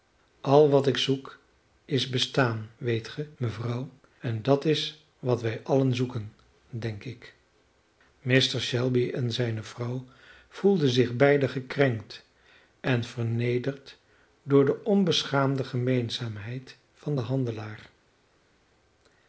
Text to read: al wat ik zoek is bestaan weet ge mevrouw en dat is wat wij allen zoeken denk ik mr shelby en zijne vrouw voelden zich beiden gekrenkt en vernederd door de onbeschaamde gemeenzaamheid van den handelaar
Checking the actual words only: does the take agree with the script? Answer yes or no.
yes